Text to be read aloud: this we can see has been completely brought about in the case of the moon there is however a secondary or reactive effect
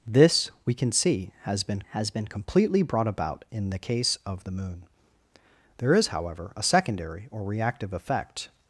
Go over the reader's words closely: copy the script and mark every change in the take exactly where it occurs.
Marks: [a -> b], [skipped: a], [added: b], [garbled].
this we can see has been [added: has been] completely brought about in the case of the moon there is however a secondary or reactive effect